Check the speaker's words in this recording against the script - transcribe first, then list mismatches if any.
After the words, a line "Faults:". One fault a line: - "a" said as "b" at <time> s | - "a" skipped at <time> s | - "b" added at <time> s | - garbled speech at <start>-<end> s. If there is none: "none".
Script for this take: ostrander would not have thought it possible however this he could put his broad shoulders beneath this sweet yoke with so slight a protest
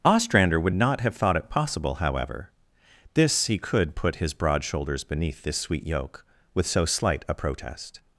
ostrander would not have thought it possible however this he could put his broad shoulders beneath this sweet yoke with so slight a protest
Faults:
none